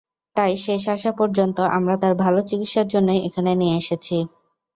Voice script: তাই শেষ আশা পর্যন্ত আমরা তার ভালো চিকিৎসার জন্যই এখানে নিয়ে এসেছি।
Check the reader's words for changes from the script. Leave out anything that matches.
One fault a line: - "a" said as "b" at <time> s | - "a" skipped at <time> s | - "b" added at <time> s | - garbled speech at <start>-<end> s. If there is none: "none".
none